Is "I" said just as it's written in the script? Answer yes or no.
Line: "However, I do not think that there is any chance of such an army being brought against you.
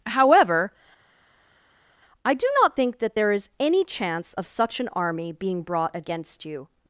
yes